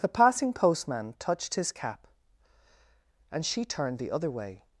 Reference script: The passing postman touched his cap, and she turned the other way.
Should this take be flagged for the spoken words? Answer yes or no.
no